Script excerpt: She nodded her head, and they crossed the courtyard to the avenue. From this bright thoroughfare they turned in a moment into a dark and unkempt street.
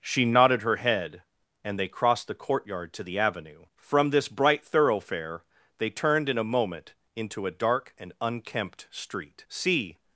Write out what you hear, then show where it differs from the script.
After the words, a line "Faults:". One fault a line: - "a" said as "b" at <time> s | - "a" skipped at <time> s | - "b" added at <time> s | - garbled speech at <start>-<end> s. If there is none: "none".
She nodded her head, and they crossed the courtyard to the avenue. From this bright thoroughfare they turned in a moment into a dark and unkempt street. "See
Faults:
- "See" added at 9.5 s